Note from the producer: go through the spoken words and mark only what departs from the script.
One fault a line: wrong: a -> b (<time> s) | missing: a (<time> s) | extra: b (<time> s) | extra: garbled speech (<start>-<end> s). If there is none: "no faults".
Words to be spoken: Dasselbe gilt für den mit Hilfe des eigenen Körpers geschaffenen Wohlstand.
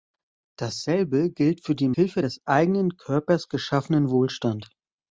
missing: mit (1.9 s)